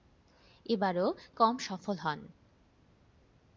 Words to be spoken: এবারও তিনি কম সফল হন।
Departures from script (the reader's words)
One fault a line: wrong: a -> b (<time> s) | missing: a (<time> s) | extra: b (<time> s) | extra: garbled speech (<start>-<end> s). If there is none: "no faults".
missing: তিনি (1.1 s)